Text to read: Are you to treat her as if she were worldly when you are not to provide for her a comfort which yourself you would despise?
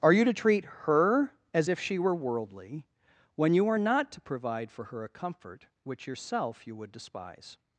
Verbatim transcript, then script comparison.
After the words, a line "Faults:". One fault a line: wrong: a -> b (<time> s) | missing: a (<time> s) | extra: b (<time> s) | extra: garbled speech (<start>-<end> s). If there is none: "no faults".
Are you to treat her as if she were worldly when you are not to provide for her a comfort which yourself you would despise?
Faults:
no faults